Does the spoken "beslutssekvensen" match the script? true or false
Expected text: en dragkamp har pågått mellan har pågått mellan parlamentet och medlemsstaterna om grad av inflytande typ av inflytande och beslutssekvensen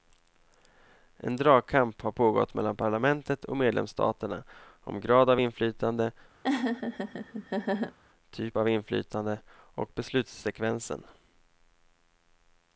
true